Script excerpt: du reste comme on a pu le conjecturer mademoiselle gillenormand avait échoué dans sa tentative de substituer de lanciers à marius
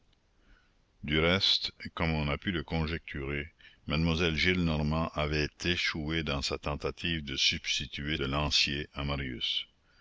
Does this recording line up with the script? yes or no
yes